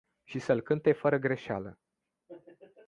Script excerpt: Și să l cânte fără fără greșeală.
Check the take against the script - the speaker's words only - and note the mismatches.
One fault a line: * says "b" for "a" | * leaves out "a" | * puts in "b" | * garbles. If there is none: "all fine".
* leaves out "fără"